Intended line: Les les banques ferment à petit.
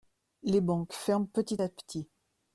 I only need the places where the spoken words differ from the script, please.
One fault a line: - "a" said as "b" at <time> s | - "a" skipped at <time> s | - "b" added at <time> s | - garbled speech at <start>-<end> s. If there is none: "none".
- "les" skipped at 0.6 s
- "petit" added at 1.3 s